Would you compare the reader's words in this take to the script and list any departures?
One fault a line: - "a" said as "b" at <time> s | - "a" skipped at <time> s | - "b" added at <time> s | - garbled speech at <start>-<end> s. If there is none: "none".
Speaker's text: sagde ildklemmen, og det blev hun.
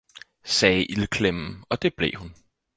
none